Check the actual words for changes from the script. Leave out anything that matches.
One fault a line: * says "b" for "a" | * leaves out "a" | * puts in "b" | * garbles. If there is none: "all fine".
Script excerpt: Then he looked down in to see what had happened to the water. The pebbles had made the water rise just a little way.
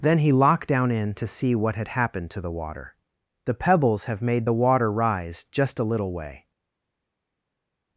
* says "locked" for "looked"
* says "have" for "had"